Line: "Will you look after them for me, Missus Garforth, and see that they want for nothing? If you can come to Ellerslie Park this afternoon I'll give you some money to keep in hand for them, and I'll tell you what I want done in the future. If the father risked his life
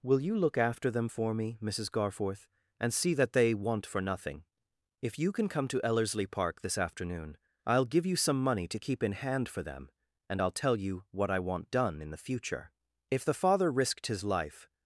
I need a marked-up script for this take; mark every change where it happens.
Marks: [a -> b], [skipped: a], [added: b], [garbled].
"Will you look after them for me, Missus Garforth, and see that they want for nothing? If you can come to Ellerslie Park this afternoon I'll give you some money to keep in hand for them, and I'll tell you what I want done in the future. If the father risked his life